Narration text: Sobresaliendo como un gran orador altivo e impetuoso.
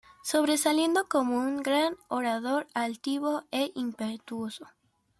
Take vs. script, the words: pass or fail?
pass